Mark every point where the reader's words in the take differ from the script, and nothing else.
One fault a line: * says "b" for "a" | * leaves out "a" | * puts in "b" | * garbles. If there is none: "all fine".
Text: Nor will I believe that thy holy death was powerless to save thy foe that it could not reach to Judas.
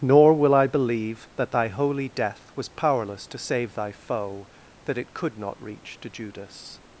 all fine